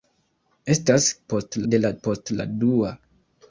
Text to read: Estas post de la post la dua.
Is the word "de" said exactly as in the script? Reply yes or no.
yes